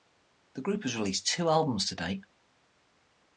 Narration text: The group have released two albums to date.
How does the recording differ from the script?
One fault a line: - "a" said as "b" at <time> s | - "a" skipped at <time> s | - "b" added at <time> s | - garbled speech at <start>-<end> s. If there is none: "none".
- "have" said as "has" at 0.8 s